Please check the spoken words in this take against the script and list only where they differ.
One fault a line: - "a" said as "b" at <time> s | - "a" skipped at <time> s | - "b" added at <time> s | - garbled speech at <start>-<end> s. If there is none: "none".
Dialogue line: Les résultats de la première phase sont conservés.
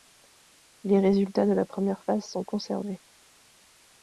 none